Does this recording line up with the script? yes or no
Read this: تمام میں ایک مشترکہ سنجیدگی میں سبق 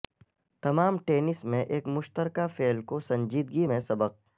no